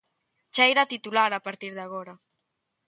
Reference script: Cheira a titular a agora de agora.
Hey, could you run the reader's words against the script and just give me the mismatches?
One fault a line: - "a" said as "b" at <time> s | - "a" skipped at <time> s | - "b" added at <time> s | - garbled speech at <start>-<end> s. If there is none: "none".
- "agora" said as "partir" at 1.5 s